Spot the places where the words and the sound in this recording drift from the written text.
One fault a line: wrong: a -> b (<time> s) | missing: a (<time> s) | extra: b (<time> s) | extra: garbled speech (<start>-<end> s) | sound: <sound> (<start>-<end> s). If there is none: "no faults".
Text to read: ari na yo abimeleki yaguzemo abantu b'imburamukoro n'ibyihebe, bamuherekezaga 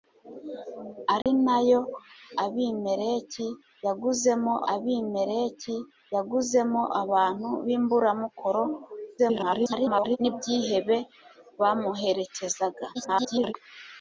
sound: dropout (1.2-1.3 s)
extra: abimeleki yaguzemo (4.7 s)
extra: garbled speech (9.2-10.2 s)
extra: garbled speech (12.9-13.5 s)